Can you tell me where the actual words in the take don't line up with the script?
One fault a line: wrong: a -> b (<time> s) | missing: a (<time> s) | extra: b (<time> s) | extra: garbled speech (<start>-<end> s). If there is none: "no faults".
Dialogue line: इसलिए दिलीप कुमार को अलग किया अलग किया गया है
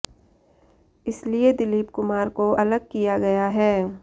missing: अलग किया (3.2 s)